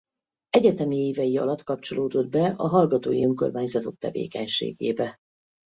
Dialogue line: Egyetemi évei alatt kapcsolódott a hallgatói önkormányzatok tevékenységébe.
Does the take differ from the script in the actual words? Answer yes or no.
yes